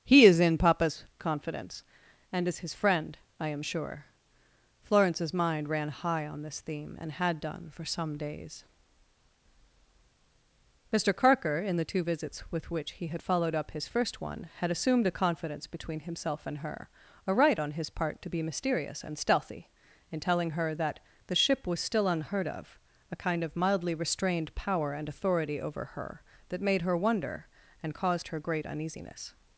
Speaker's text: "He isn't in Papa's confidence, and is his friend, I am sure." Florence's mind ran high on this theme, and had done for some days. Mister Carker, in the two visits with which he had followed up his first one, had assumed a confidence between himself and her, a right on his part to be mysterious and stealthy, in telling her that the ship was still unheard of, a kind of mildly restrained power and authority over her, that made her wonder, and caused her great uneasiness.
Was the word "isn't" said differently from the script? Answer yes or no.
yes